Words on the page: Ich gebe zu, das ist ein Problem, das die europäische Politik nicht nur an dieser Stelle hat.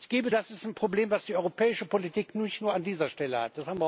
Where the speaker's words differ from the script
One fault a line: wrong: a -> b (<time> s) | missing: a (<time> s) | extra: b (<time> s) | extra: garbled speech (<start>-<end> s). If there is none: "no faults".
missing: zu (0.3 s)